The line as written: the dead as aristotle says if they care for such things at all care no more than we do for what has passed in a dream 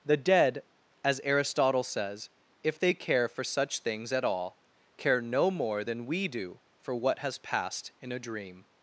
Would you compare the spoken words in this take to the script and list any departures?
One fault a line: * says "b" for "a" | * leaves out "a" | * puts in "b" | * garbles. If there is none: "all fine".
all fine